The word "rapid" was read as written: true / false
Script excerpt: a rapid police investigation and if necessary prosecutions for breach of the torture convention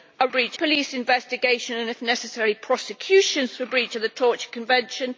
false